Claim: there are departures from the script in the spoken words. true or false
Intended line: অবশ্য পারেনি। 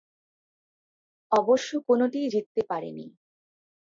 true